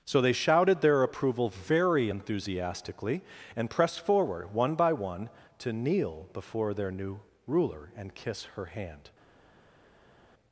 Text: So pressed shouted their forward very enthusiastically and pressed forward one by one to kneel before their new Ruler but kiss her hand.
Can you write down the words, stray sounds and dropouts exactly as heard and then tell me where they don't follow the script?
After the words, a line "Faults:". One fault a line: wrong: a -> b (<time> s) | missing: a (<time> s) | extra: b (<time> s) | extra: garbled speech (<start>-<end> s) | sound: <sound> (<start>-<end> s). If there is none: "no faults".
So they shouted their approval very enthusiastically and pressed forward one by one to kneel before their new Ruler and kiss her hand.
Faults:
wrong: pressed -> they (0.2 s)
wrong: forward -> approval (1.0 s)
wrong: but -> and (8.0 s)